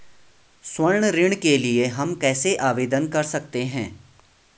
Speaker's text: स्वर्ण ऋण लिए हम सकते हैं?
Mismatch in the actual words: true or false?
true